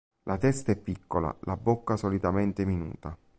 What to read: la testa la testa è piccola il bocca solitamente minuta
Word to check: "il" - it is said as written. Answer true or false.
false